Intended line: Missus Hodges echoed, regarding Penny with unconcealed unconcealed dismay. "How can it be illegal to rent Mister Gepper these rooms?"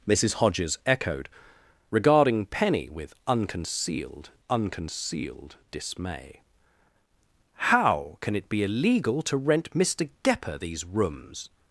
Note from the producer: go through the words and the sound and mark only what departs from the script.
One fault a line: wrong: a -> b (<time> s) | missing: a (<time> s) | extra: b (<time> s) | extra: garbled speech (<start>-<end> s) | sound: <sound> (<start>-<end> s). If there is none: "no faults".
no faults